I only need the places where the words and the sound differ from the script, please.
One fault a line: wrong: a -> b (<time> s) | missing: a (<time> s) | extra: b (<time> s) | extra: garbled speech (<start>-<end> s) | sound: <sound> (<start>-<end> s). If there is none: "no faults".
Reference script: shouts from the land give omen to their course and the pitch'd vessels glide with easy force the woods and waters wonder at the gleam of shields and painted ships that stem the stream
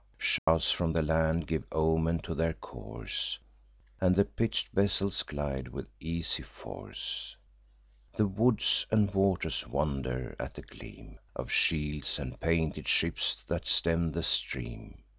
sound: dropout (0.4-0.5 s)